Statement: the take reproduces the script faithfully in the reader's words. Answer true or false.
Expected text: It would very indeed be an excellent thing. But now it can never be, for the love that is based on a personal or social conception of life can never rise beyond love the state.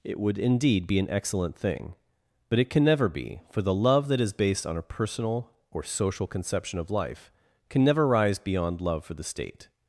false